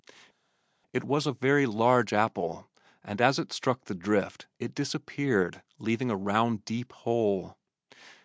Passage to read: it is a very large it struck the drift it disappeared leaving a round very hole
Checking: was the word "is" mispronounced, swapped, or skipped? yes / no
yes